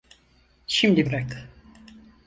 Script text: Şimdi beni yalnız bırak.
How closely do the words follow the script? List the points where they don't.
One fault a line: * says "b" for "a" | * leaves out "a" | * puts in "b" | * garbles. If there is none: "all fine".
* leaves out "beni yalnız"